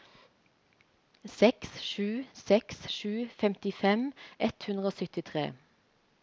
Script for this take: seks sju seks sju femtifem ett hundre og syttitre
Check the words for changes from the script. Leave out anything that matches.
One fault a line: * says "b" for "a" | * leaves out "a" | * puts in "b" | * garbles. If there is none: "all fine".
all fine